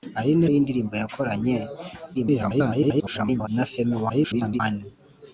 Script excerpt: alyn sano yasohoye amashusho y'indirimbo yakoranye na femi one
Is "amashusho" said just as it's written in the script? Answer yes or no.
no